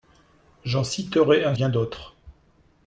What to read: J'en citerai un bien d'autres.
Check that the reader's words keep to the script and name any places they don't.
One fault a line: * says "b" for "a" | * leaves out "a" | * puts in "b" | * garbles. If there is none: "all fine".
all fine